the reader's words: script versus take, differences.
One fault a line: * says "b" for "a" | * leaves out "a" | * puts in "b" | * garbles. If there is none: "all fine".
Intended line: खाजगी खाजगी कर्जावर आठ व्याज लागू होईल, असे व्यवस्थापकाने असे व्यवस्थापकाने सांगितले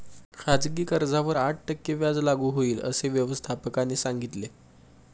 * leaves out "खाजगी"
* puts in "टक्के"
* leaves out "असे व्यवस्थापकाने"